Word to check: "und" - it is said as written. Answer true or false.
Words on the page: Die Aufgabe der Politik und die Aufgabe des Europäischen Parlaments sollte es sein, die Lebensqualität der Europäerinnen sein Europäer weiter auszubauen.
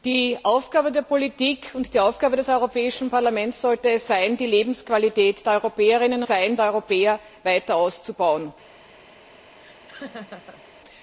true